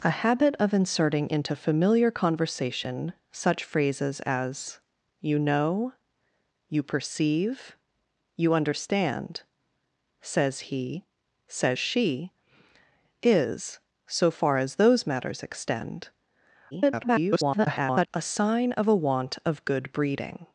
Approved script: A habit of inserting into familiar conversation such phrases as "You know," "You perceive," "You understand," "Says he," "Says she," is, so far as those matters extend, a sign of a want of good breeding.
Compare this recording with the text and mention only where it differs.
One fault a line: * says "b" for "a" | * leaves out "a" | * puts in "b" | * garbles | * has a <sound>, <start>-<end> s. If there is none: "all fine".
* garbles